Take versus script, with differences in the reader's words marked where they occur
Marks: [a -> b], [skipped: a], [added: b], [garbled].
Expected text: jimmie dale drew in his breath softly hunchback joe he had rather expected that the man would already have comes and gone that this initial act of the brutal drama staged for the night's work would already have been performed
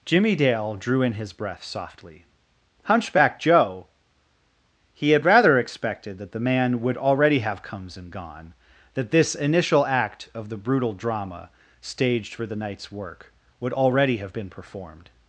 jimmie dale drew in his breath softly hunchback joe he had rather expected that the man would already have comes and gone that this initial act of the brutal drama staged for the night's work would already have been performed